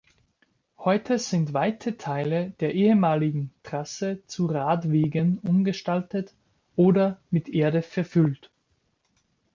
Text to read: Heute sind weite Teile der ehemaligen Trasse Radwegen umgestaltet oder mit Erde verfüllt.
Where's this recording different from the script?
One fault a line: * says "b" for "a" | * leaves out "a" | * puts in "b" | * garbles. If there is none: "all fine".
* puts in "zu"